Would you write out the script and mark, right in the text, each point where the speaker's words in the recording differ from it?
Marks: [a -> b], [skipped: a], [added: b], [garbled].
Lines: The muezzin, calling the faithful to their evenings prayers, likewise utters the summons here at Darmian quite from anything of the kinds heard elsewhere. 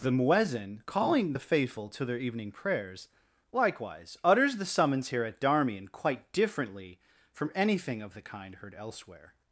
The muezzin, calling the faithful to their [evenings -> evening] prayers, likewise utters the summons here at Darmian quite [added: differently] from anything of the [kinds -> kind] heard elsewhere.